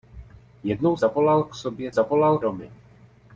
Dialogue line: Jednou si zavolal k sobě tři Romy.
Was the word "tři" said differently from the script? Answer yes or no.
yes